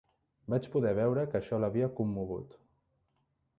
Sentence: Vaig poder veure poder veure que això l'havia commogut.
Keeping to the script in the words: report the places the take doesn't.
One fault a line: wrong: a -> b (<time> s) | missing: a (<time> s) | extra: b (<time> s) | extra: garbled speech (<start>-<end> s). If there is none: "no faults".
missing: poder veure (1.3 s)